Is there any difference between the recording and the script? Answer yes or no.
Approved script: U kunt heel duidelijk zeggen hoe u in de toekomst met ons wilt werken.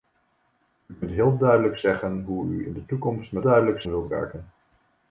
yes